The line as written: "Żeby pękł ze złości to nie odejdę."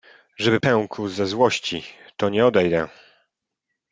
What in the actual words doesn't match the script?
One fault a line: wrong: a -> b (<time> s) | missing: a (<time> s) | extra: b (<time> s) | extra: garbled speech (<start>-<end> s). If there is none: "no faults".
no faults